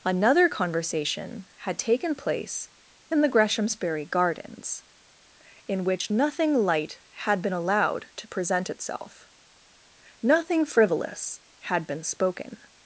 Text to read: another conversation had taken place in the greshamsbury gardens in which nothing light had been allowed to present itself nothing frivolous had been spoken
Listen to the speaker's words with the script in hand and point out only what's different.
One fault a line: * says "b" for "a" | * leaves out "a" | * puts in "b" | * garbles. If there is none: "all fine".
all fine